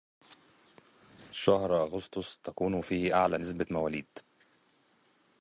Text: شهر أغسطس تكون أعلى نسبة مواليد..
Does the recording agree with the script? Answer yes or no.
no